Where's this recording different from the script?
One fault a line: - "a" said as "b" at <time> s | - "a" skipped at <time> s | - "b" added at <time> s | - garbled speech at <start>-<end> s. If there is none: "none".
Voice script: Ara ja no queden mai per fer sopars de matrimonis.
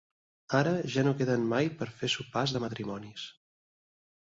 none